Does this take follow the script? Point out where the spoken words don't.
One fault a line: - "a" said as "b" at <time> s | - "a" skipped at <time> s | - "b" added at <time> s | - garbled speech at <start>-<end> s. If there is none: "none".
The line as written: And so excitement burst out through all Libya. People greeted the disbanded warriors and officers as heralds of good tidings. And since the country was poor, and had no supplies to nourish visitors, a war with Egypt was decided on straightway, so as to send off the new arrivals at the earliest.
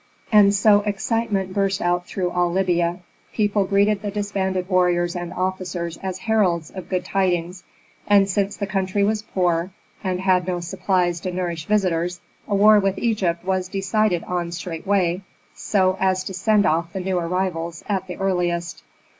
none